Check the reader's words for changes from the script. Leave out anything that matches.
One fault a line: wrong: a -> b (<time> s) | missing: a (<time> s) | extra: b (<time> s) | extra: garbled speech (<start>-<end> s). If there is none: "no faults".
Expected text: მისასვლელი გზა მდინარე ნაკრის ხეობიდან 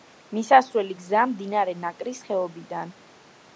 no faults